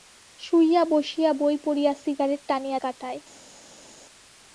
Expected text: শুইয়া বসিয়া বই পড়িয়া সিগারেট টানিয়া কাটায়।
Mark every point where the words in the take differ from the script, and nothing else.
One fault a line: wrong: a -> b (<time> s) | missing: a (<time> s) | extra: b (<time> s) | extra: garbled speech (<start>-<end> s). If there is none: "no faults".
no faults